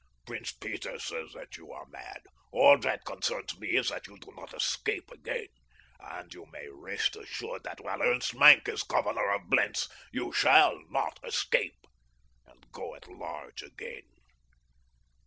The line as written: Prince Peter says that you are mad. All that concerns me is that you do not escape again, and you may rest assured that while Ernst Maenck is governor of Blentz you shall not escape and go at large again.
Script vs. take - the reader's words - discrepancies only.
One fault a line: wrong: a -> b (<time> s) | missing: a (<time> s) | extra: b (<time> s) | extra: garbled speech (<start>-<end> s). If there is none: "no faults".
no faults